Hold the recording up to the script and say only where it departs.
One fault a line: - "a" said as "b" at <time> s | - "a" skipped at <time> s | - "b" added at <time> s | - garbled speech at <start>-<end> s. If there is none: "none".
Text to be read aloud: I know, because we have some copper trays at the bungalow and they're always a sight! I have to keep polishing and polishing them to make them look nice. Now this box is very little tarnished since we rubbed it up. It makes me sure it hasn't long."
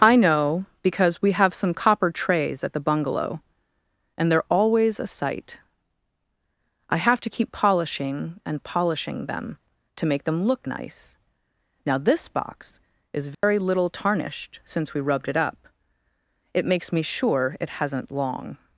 none